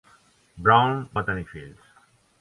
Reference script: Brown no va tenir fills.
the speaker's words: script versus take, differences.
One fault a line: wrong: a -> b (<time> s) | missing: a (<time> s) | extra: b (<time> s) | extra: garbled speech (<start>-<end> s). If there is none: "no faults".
missing: no (1.0 s)